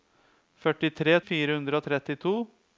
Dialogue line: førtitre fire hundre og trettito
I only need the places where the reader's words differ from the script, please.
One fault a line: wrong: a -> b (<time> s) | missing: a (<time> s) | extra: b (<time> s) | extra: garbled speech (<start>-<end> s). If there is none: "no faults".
no faults